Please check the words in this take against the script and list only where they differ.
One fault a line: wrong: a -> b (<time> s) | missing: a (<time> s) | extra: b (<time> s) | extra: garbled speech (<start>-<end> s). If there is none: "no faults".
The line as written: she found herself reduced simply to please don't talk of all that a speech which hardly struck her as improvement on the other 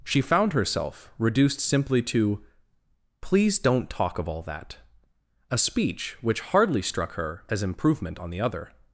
no faults